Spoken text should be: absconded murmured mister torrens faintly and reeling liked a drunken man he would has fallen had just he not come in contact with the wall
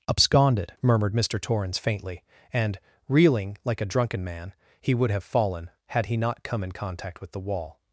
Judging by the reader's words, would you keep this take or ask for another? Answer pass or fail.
fail